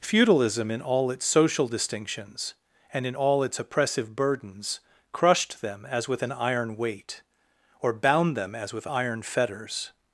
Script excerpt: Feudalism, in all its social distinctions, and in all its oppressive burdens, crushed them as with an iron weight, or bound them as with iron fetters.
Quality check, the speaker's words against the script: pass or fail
pass